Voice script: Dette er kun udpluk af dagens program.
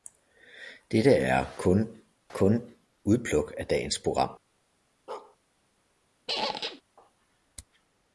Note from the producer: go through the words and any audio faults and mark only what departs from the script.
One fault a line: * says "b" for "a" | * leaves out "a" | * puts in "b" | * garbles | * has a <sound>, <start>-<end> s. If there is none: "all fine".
* puts in "kun"
* has a bark, 5.1-5.4 s
* has a squeak, 6.3-6.8 s